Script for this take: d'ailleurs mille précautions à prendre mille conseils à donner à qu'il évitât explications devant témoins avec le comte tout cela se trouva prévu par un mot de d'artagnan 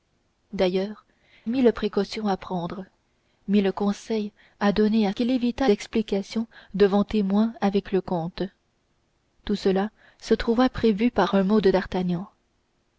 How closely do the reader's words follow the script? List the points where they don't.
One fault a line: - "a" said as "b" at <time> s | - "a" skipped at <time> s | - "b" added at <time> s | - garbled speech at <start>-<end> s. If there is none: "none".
none